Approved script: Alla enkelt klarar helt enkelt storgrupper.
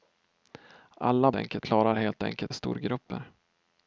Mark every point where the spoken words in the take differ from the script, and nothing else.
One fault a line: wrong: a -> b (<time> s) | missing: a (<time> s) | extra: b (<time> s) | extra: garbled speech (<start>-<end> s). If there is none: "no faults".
no faults